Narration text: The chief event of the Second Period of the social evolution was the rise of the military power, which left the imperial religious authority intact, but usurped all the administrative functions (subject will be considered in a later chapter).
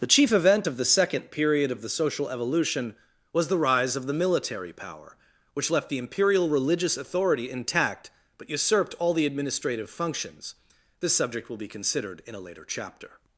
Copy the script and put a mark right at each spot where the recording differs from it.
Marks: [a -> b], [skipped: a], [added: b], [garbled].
The chief event of the Second Period of the social evolution was the rise of the military power, which left the imperial religious authority intact, but usurped all the administrative functions [added: this] (subject will be considered in a later chapter).